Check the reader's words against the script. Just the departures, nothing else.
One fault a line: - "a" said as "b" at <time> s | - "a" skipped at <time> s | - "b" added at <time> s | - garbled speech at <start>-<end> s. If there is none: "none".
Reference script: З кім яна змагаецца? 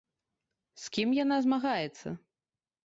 none